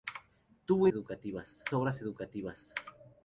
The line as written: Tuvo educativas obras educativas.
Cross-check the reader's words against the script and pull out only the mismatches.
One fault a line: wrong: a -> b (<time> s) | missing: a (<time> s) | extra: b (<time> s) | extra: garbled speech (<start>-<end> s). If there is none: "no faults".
no faults